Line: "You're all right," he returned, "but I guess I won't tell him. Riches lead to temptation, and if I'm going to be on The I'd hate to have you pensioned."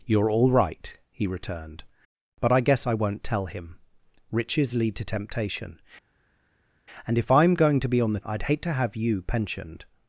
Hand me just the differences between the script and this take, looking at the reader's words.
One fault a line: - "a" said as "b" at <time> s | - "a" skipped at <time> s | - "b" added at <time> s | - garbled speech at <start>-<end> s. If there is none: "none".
none